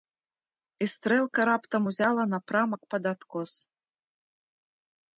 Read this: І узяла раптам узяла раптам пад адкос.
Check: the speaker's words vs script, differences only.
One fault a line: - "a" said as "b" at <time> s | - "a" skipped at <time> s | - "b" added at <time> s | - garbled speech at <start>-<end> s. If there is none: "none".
- "узяла" said as "стрэлка" at 0.9 s
- "раптам" said as "напрамак" at 2.4 s